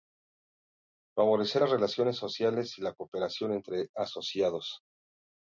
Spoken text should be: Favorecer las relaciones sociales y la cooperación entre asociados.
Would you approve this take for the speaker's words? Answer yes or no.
yes